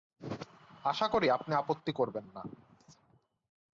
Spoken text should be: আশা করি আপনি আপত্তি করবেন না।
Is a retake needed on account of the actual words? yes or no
no